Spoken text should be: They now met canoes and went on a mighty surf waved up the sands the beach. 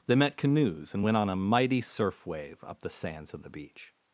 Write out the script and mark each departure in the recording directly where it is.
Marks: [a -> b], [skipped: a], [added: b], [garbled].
They [skipped: now] met canoes and went on a mighty surf [waved -> wave] up the sands [added: of] the beach.